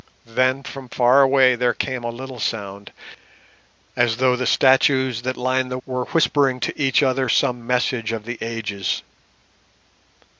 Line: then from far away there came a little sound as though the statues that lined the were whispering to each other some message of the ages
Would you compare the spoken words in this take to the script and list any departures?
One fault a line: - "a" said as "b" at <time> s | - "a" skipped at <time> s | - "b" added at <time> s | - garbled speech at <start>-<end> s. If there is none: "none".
none